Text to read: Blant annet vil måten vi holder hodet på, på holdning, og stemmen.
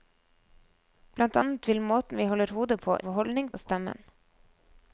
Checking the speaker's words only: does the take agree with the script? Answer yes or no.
yes